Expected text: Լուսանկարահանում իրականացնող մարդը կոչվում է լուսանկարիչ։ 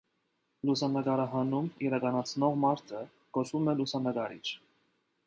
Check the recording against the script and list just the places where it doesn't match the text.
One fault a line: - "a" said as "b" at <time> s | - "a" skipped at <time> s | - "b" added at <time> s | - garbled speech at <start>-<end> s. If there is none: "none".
none